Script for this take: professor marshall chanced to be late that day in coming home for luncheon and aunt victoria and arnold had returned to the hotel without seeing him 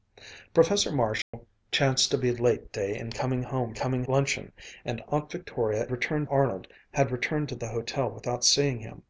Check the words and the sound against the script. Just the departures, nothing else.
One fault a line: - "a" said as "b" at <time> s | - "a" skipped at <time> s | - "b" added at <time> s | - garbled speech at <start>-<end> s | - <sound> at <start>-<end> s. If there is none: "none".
- dropout at 1.2-1.3 s
- "that" skipped at 2.7 s
- "for" said as "coming" at 3.7 s
- "and" said as "returned" at 5.9 s